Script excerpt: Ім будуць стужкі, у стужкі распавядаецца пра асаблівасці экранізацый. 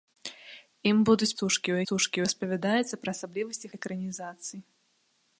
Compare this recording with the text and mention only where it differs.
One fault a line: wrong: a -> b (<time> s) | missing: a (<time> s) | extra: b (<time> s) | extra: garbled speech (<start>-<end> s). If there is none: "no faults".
no faults